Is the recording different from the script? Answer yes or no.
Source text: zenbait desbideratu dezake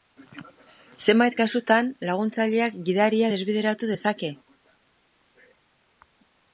yes